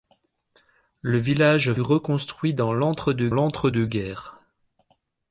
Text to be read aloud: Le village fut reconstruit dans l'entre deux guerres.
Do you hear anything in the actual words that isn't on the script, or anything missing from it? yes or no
yes